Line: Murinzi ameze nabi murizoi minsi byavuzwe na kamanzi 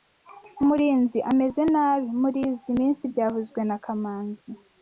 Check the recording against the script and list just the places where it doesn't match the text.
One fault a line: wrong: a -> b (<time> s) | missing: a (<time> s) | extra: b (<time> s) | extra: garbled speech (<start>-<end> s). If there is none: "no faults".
no faults